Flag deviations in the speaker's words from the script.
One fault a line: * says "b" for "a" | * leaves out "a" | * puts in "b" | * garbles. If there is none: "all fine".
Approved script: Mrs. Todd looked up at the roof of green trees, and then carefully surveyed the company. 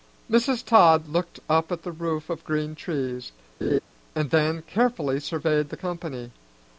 all fine